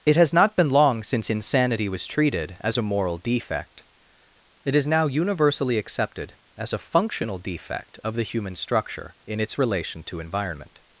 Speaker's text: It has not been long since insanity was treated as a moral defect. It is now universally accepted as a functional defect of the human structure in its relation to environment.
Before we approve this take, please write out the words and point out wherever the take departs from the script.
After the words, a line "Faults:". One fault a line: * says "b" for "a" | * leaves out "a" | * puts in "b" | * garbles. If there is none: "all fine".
It has not been long since insanity was treated as a moral defect. It is now universally accepted as a functional defect of the human structure in its relation to environment.
Faults:
all fine